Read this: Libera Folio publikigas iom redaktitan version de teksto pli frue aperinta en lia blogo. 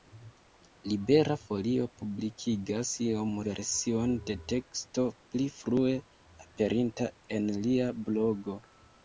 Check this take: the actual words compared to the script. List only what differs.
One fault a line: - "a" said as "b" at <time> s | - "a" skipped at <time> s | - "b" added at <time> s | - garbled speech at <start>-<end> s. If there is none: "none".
- "redaktitan" skipped at 3.4 s